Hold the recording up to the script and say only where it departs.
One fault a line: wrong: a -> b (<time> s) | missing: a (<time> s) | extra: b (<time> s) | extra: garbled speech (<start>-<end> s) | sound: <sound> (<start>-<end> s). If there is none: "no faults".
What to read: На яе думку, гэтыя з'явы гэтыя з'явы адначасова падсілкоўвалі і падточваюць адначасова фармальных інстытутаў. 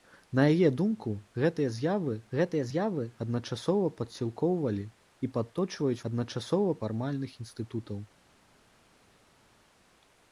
no faults